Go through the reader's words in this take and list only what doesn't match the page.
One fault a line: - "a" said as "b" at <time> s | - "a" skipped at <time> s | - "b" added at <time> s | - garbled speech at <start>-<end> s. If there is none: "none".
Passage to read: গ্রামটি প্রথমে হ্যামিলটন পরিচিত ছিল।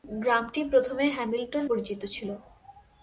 none